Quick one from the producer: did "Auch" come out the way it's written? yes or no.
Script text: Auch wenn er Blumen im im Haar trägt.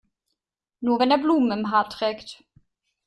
no